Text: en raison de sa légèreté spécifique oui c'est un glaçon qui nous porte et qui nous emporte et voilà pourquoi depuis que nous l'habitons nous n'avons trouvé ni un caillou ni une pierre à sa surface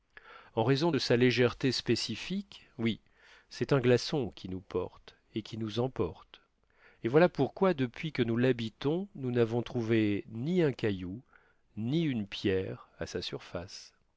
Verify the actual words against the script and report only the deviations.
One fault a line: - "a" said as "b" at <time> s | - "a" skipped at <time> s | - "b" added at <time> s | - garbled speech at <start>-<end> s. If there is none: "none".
none